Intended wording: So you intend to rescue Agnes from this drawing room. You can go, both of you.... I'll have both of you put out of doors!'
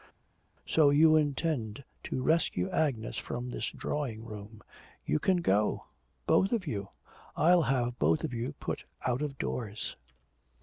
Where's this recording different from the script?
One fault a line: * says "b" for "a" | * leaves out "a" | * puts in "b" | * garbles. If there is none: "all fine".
all fine